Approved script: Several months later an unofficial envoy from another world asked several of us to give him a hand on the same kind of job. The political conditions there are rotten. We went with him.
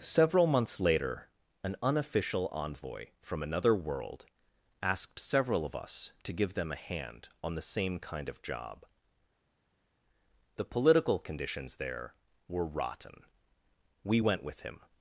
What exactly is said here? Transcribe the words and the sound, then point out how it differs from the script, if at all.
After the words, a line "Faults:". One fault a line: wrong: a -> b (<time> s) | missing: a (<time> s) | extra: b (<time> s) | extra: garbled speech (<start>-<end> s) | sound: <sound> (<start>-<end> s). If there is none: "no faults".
Several months later an unofficial envoy from another world asked several of us to give them a hand on the same kind of job. The political conditions there were rotten. We went with him.
Faults:
wrong: him -> them (6.5 s)
wrong: are -> were (12.5 s)